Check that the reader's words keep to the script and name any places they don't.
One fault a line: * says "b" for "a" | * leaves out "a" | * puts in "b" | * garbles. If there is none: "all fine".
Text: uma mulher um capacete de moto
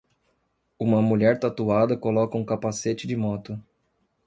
* puts in "tatuada coloca"